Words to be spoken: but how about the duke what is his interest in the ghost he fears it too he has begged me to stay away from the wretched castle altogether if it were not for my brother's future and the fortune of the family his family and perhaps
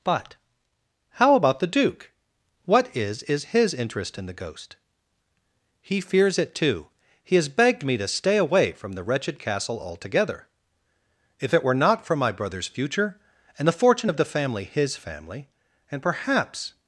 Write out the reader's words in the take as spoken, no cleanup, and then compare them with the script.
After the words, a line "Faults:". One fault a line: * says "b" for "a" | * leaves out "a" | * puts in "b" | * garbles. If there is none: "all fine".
but how about the duke what is is his interest in the ghost he fears it too he has begged me to stay away from the wretched castle altogether if it were not for my brother's future and the fortune of the family his family and perhaps
Faults:
* puts in "is"